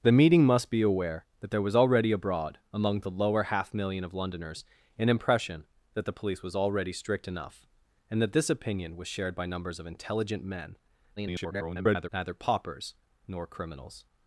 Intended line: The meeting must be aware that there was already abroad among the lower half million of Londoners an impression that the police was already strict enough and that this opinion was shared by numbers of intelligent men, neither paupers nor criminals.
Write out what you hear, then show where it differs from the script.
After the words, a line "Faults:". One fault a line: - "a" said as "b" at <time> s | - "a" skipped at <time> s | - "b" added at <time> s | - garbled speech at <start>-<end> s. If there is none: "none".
The meeting must be aware that there was already abroad among the lower half million of Londoners an impression that the police was already strict enough and that this opinion was shared by numbers of intelligent men, [garbled] neither paupers nor criminals.
Faults:
- garbled speech at 11.2-12.1 s